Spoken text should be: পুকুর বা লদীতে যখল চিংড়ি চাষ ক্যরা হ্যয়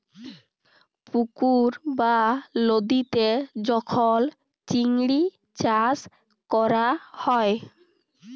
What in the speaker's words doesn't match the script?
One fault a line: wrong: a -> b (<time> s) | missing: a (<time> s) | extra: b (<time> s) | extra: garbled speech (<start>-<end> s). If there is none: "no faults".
no faults